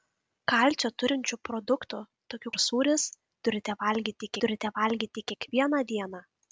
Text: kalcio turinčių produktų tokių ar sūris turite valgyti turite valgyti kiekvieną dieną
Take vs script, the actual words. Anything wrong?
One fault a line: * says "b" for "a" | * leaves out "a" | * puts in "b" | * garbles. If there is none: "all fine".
all fine